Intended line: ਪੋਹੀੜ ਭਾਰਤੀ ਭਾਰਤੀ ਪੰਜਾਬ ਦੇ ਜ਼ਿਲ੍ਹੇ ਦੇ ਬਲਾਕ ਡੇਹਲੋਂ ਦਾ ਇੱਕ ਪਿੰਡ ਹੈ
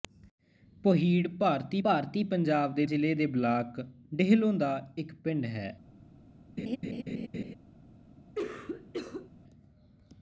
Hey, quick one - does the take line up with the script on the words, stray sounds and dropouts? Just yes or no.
no